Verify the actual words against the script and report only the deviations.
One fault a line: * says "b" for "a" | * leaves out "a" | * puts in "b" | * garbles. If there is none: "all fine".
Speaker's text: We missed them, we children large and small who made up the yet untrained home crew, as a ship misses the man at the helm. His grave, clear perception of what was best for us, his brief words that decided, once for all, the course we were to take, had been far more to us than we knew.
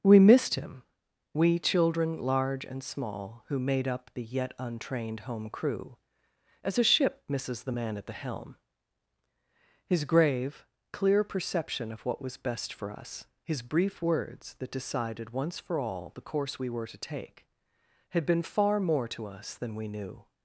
* says "him" for "them"